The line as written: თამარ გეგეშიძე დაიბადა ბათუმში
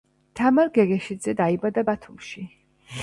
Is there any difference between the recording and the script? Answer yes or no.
no